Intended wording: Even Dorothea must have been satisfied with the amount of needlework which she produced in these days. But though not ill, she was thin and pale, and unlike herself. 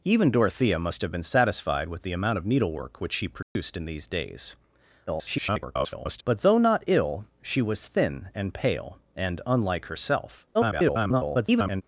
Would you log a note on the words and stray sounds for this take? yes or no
yes